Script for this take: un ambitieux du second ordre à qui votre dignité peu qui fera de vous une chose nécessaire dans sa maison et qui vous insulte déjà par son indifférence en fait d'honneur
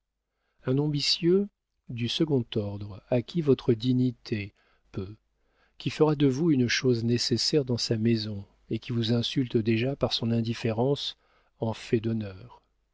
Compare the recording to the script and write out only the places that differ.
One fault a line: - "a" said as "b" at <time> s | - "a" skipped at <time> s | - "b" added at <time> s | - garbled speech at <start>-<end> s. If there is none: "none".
none